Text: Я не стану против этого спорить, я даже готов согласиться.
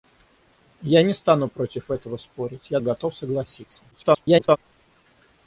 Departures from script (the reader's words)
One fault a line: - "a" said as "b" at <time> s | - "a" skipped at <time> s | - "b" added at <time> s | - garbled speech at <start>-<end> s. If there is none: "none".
- "даже" skipped at 2.8 s
- garbled speech at 3.9-4.6 s